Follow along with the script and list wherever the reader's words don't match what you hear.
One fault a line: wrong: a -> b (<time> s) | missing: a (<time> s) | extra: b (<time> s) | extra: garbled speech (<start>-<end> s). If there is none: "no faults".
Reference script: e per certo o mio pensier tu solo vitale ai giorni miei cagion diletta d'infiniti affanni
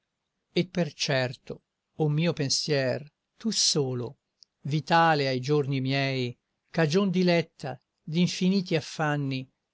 no faults